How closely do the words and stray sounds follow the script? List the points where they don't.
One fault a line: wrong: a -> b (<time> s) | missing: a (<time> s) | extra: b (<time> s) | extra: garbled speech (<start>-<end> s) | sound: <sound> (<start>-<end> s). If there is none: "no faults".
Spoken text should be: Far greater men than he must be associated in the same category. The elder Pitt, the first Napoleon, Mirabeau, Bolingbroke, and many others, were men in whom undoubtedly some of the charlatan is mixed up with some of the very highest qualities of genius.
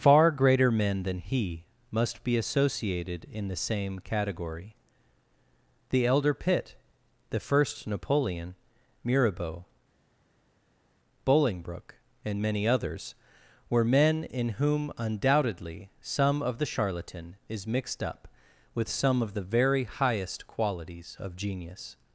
no faults